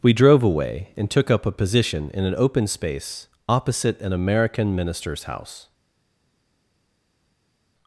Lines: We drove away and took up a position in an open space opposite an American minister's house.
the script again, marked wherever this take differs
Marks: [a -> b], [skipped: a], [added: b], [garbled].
We drove away and took up a position in an open space opposite an American minister's house.